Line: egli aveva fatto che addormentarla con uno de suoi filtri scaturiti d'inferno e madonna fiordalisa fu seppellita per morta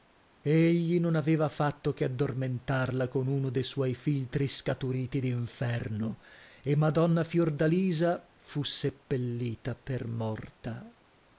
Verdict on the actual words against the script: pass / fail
fail